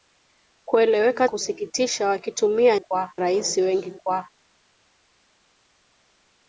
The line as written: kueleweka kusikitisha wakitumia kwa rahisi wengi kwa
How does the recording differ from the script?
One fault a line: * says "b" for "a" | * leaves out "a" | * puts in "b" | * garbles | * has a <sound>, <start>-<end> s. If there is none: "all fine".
all fine